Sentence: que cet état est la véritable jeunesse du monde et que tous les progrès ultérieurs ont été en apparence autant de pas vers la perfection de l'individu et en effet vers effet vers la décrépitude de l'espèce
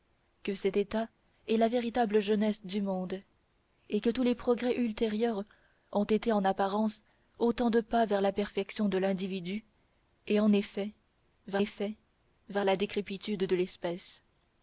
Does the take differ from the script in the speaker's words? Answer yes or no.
no